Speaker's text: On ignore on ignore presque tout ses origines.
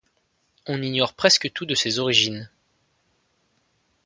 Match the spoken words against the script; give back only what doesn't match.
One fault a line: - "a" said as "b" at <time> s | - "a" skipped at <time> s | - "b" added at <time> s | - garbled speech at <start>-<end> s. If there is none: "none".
- "on ignore" skipped at 1.1 s
- "de" added at 1.6 s